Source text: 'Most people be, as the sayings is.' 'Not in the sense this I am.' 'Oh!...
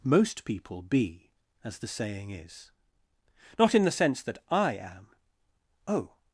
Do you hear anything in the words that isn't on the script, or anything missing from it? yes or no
yes